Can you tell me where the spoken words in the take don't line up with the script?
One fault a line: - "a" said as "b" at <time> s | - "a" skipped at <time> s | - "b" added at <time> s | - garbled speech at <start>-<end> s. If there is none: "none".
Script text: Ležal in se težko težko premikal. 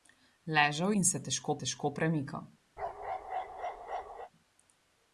none